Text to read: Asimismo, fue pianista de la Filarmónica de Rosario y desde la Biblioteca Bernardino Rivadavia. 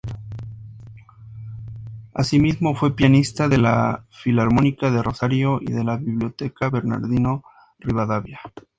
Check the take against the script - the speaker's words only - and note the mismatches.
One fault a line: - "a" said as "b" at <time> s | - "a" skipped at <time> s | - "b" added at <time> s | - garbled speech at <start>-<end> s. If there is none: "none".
- "desde" said as "de" at 5.7 s